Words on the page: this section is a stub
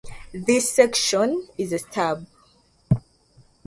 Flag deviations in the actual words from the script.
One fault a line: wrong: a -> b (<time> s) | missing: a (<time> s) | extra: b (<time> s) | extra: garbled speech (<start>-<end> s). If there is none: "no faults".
no faults